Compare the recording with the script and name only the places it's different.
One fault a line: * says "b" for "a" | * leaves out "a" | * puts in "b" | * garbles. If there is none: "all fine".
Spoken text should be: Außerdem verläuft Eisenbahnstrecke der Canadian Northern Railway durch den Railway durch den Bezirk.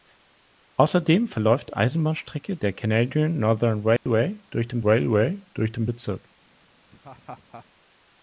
all fine